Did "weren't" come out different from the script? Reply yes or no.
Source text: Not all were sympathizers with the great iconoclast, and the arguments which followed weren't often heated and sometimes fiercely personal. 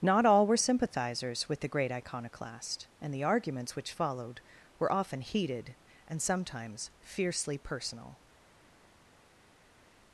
yes